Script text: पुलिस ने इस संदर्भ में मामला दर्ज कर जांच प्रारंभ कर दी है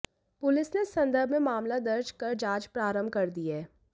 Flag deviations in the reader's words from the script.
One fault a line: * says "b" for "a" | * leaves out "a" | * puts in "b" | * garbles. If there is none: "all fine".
all fine